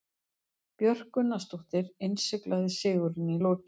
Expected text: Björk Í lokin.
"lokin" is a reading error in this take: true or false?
false